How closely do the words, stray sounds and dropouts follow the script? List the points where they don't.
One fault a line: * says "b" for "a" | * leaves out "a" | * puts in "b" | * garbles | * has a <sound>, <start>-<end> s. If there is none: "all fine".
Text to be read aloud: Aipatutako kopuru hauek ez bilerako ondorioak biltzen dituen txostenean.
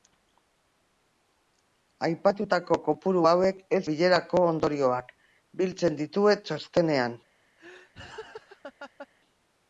* has a laugh, 7.6-9.1 s